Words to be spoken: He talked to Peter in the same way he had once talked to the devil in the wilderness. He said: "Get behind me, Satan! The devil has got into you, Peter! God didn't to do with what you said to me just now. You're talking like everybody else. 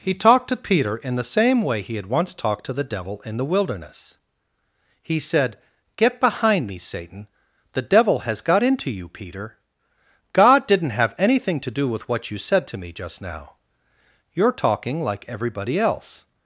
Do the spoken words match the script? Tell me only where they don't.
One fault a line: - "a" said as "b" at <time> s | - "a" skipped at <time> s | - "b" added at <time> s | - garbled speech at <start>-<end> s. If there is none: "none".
- "have anything" added at 11.0 s